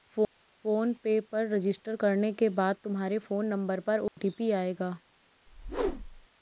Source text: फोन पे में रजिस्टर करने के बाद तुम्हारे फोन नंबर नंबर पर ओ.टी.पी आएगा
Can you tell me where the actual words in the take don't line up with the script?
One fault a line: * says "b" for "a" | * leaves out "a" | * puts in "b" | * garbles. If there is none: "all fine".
* says "पर" for "में"
* leaves out "नंबर"